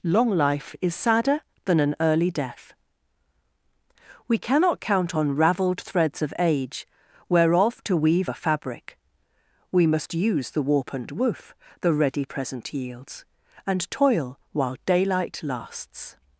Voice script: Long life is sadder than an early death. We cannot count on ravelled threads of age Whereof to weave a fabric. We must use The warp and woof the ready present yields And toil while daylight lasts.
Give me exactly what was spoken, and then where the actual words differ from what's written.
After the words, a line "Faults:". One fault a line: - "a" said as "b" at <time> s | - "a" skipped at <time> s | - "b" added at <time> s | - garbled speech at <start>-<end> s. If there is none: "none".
Long life is sadder than an early death. We cannot count on ravelled threads of age Whereof to weave a fabric. We must use The warp and woof the ready present yields And toil while daylight lasts.
Faults:
none